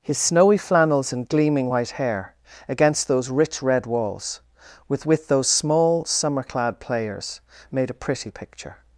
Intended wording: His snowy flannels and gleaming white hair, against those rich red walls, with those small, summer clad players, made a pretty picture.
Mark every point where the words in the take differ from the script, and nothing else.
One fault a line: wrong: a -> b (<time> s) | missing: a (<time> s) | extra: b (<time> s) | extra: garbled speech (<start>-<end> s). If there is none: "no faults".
extra: with (5.0 s)